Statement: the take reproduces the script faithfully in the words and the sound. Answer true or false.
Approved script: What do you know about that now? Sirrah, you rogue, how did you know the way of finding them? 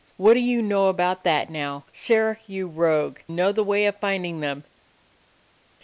false